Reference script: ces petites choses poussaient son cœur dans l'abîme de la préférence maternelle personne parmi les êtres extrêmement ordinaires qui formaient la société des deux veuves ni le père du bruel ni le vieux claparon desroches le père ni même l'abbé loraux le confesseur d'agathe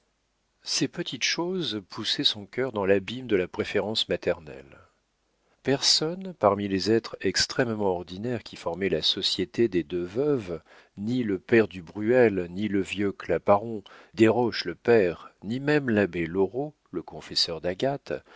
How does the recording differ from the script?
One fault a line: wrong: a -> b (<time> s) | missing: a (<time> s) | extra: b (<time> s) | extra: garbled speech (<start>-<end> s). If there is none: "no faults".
no faults